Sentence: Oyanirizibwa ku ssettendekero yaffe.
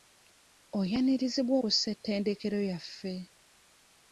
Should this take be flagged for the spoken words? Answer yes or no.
no